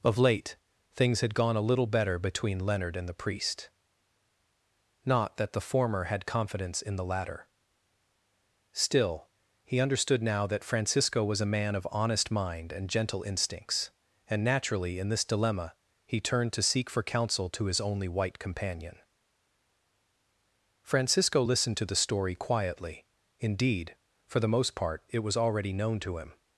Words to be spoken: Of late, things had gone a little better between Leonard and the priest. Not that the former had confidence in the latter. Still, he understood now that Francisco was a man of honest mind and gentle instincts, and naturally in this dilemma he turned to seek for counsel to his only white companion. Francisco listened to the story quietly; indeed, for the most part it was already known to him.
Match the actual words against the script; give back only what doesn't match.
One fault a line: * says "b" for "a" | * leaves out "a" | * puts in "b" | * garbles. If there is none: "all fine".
all fine